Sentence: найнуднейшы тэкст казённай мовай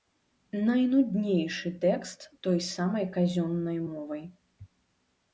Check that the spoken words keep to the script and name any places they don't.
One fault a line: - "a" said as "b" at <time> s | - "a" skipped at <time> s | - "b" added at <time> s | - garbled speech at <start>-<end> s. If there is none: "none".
- "той самай" added at 2.5 s